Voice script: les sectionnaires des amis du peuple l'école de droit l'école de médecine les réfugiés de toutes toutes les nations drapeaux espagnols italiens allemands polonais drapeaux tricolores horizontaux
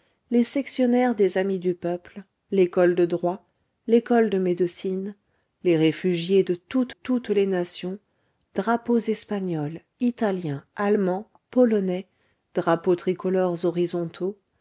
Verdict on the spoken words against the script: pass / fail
pass